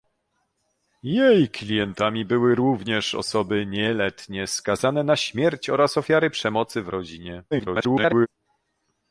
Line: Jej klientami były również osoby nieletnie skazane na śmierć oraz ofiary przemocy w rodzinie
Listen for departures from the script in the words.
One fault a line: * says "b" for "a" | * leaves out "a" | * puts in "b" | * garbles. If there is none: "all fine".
* garbles